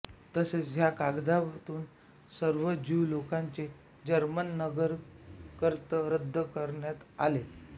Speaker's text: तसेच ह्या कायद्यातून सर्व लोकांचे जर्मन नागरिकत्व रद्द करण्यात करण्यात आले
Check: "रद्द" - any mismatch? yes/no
no